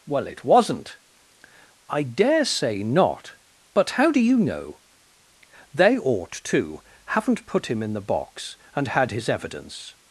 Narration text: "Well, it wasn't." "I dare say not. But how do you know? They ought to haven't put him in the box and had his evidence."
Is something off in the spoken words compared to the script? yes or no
no